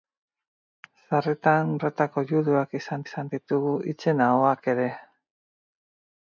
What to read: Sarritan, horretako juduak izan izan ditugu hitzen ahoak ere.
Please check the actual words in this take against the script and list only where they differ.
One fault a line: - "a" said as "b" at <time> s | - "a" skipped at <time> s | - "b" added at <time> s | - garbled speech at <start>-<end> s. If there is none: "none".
none